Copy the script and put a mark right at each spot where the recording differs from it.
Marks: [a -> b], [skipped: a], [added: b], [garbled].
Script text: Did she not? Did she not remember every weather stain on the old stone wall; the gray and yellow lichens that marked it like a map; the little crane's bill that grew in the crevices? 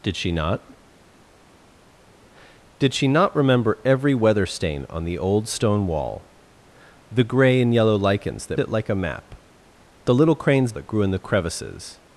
Did she not? Did she not remember every weather stain on the old stone wall; the gray and yellow lichens that [skipped: marked] it like a map; the little crane's [skipped: bill] that grew in the crevices?